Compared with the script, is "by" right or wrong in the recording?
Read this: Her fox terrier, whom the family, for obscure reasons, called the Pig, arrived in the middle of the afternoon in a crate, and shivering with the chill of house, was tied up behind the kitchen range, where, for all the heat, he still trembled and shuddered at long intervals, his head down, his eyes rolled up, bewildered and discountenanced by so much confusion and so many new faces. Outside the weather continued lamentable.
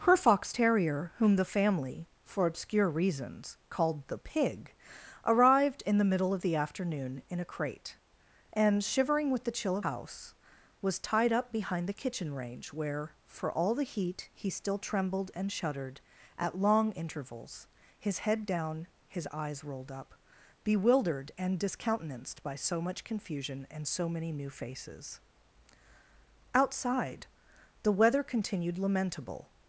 right